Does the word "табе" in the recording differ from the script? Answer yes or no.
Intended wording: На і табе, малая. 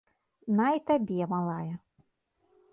no